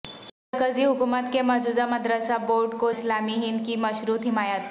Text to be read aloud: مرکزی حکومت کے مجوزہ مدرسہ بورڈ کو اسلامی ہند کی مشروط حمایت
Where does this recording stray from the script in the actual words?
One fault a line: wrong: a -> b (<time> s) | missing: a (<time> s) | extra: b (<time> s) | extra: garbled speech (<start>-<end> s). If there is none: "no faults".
no faults